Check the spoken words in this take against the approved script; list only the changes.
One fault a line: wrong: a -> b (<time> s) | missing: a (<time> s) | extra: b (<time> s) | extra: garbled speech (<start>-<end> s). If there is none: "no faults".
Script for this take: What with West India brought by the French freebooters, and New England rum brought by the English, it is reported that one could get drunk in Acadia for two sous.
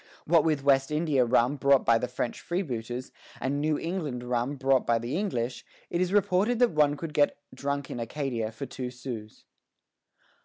extra: rum (1.2 s)